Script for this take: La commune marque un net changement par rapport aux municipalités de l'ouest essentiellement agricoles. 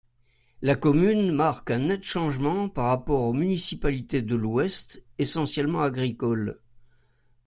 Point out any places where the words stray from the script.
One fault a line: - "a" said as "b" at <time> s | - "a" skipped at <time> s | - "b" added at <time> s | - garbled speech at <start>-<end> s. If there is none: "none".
none